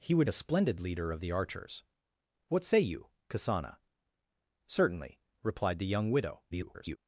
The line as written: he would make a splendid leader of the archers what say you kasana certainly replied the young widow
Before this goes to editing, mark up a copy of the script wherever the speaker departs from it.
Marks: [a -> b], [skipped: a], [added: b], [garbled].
he would [skipped: make] a splendid leader of the archers what say you kasana certainly replied the young widow [garbled]